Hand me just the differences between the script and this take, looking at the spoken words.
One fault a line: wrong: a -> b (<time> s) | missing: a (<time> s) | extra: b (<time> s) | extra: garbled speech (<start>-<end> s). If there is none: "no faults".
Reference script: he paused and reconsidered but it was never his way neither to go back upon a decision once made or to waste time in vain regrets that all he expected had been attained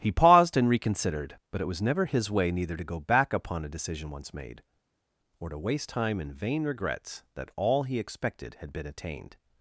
no faults